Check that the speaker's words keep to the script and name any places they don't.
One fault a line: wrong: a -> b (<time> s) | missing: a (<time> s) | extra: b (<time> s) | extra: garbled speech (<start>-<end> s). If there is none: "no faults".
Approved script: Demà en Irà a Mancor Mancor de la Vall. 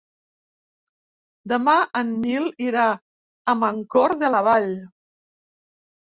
extra: Nil (2.2 s)
missing: Mancor (4.2 s)